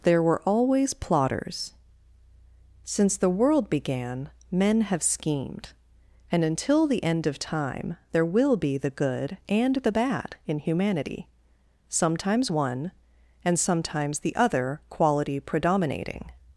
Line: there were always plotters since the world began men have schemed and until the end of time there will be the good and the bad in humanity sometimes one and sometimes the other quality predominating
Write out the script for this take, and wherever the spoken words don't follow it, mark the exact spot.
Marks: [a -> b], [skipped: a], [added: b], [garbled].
there were always plotters since the world began men have schemed and until the end of time there will be the good and the bad in humanity sometimes one and sometimes the other quality predominating